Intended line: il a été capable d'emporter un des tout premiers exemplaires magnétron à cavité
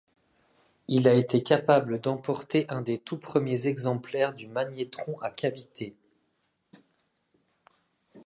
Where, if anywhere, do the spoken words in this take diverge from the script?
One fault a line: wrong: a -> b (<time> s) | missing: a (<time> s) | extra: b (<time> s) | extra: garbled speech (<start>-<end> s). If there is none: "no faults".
extra: du (4.3 s)